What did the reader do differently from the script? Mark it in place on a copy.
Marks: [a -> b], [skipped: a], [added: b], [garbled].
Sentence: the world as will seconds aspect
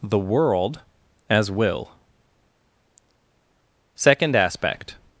the world as will [seconds -> second] aspect